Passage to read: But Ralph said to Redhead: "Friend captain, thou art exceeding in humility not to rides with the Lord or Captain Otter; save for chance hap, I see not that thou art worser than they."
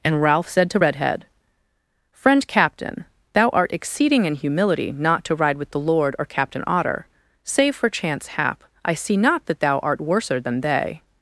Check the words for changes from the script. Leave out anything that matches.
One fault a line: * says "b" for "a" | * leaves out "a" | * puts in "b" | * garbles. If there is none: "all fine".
* says "And" for "But"
* says "ride" for "rides"